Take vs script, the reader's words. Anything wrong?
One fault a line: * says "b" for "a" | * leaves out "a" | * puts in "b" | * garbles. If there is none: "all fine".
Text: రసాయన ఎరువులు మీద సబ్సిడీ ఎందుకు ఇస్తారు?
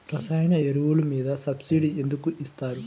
all fine